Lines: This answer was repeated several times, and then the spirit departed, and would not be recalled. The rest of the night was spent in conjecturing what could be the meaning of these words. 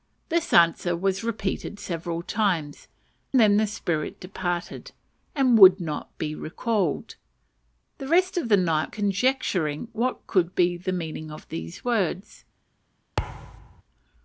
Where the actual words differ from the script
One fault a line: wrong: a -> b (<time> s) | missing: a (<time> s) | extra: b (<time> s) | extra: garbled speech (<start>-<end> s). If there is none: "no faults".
missing: and (2.9 s)
missing: was spent in (8.9 s)